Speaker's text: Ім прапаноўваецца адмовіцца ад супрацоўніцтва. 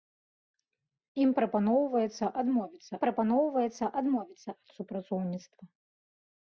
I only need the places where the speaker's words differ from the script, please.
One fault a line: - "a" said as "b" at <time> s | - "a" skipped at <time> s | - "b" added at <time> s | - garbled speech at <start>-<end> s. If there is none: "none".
- "прапаноўваецца адмовіцца" added at 3.0 s